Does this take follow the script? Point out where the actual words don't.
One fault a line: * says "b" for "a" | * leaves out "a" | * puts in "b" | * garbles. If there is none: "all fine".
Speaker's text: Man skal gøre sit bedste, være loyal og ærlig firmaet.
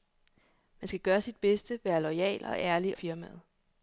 all fine